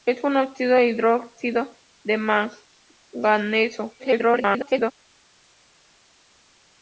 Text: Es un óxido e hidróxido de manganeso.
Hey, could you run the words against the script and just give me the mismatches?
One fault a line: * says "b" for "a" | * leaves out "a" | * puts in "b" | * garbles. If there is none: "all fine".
* garbles